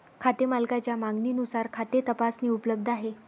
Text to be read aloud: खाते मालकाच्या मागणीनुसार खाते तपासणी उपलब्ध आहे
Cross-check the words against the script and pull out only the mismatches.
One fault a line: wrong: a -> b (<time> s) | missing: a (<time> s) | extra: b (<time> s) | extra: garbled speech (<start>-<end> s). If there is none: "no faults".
no faults